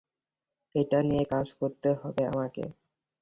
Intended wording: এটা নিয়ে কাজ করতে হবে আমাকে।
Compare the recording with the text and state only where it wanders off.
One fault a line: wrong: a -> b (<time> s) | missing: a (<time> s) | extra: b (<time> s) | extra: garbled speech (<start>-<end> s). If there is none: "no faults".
no faults